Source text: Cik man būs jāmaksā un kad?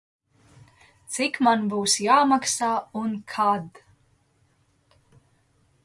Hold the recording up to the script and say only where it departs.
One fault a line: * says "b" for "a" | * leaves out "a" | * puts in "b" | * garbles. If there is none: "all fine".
all fine